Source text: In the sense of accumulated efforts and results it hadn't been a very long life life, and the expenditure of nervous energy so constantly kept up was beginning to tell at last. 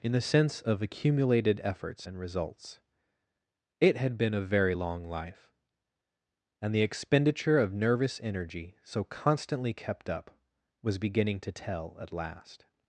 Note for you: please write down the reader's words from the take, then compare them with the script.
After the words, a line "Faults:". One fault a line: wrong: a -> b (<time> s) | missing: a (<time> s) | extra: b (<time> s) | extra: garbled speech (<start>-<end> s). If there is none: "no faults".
In the sense of accumulated efforts and results it had been a very long life, and the expenditure of nervous energy so constantly kept up was beginning to tell at last.
Faults:
wrong: hadn't -> had (4.0 s)
missing: life (5.5 s)